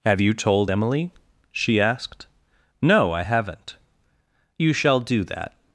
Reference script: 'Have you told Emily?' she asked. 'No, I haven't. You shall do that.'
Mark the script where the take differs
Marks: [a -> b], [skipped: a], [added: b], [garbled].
'Have you told Emily?' she asked. 'No, I haven't. You shall do that.'